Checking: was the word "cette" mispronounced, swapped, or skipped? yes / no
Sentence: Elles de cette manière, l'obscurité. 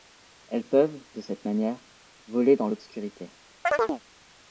no